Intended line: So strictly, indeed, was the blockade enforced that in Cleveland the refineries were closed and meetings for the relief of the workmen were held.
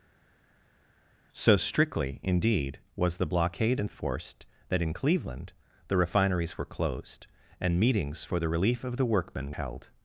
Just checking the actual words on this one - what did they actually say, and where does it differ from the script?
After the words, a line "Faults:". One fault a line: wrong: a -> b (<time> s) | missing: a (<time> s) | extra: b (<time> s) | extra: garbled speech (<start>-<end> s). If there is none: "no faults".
So strictly, indeed, was the blockade enforced that in Cleveland the refineries were closed and meetings for the relief of the workmen held.
Faults:
missing: were (9.5 s)